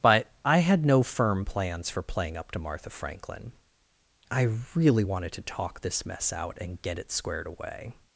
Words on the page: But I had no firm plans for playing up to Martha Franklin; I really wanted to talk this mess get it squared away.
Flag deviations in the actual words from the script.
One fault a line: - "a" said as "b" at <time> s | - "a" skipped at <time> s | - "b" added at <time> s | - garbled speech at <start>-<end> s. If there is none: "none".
- "out and" added at 6.3 s